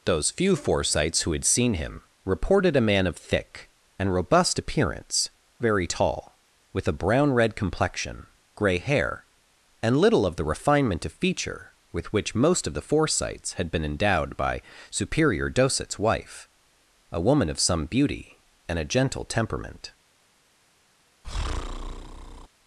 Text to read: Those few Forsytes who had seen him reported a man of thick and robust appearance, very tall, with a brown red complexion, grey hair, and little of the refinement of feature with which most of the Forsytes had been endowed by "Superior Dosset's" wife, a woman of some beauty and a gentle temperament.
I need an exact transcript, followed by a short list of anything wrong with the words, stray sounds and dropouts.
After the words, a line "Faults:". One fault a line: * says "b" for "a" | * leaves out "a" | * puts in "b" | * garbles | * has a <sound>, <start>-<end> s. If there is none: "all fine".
Those few Forsytes who had seen him reported a man of thick and robust appearance, very tall, with a brown red complexion, grey hair, and little of the refinement of feature with which most of the Forsytes had been endowed by "Superior Dosset's" wife, a woman of some beauty and a gentle temperament.
Faults:
* has a breath, 21.2-22.5 s